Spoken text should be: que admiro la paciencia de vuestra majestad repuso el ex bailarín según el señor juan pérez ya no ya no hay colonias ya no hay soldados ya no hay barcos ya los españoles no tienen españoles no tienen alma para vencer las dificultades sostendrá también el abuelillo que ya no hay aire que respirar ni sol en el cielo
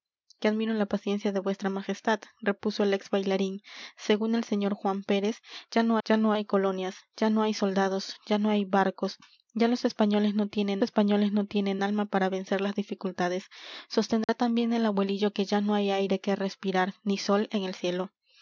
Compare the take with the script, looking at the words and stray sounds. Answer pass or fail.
fail